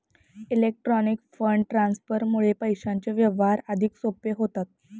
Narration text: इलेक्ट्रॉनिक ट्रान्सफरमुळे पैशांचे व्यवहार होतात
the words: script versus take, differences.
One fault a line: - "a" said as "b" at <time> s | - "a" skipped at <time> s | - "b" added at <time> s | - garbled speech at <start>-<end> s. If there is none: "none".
- "फंड" added at 1.3 s
- "अधिक सोपे" added at 3.7 s